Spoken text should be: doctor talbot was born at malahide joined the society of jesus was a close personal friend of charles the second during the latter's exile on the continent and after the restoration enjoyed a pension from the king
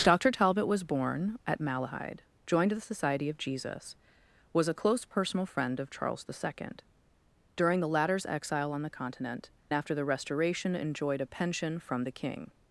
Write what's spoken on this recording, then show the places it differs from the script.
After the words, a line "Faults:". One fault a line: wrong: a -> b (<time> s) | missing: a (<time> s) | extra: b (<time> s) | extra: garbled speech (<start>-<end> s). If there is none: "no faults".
doctor talbot was born at malahide joined the society of jesus was a close personal friend of charles the second during the latter's exile on the continent after the restoration enjoyed a pension from the king
Faults:
missing: and (9.5 s)